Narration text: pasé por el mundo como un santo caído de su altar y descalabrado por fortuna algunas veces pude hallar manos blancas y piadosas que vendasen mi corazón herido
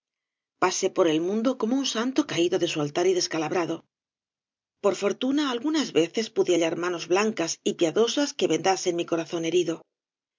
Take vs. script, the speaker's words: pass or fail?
pass